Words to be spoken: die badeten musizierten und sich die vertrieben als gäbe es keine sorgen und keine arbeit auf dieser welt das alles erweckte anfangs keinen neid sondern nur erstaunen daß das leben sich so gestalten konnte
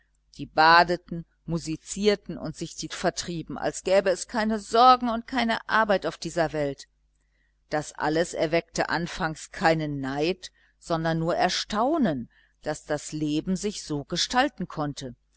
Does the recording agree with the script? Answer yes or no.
yes